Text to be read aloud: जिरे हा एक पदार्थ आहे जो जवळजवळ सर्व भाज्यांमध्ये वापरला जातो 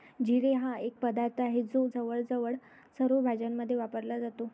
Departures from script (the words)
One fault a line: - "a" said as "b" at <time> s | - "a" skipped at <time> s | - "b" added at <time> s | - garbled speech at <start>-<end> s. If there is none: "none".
none